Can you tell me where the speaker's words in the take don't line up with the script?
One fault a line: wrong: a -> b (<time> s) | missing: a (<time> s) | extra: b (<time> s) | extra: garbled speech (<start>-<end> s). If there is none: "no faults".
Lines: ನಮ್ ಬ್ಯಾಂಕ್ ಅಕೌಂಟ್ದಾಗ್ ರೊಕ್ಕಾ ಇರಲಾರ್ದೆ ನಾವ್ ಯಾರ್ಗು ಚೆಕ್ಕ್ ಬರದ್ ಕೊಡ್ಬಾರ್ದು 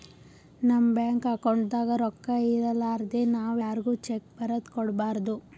no faults